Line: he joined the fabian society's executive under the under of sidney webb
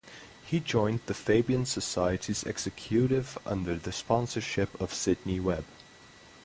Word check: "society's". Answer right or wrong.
right